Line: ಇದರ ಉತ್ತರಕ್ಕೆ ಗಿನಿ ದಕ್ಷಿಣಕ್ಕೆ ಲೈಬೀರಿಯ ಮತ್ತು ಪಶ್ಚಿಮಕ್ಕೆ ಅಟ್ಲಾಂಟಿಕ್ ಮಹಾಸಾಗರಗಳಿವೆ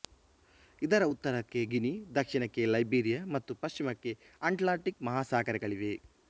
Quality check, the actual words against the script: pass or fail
pass